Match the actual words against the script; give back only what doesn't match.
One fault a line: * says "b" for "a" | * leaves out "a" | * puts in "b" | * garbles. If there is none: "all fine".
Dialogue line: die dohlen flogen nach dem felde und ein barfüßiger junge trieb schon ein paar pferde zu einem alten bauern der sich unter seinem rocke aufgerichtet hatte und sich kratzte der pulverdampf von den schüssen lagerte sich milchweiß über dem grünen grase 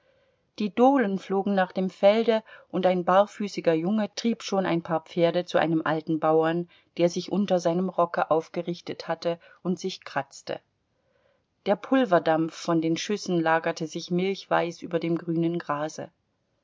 all fine